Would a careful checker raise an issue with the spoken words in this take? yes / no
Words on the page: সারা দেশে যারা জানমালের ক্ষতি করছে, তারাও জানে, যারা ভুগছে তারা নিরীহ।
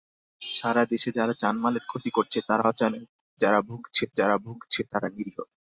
yes